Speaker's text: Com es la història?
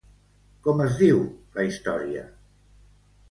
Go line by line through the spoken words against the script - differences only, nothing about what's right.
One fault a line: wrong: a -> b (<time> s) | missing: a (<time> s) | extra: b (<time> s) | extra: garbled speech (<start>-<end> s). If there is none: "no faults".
extra: diu (1.0 s)